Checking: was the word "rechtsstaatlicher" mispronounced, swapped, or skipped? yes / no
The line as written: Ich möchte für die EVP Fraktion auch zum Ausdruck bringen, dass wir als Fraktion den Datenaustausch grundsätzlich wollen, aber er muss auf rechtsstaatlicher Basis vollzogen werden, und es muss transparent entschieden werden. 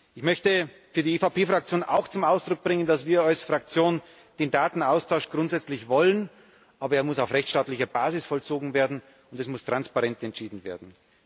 no